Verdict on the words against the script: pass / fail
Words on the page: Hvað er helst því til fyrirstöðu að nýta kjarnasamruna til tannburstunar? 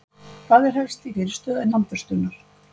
fail